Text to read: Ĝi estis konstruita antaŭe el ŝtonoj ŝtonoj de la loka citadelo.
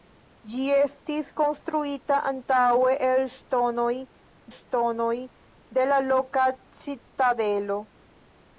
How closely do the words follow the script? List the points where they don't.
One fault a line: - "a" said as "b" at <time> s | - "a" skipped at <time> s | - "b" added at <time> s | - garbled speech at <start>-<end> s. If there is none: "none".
none